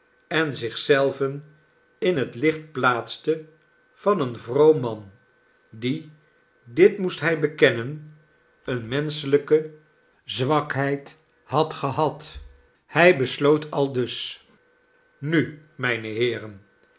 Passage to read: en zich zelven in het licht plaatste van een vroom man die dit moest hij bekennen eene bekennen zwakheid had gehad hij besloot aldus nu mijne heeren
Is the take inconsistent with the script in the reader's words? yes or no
yes